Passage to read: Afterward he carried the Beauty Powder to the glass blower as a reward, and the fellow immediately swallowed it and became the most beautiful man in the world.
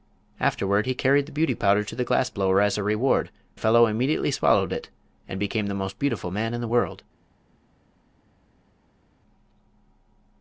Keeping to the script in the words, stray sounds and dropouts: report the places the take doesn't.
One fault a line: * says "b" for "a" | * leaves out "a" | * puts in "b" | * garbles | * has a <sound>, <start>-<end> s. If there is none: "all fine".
* leaves out "and"